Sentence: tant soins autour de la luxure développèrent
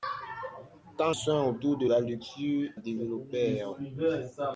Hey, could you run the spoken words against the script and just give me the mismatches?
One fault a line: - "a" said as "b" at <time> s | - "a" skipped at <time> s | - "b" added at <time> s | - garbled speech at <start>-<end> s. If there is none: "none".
none